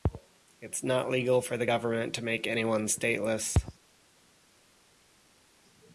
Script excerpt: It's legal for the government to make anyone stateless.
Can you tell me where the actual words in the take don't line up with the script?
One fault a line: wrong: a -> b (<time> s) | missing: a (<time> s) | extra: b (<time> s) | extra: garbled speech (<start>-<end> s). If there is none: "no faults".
extra: not (0.8 s)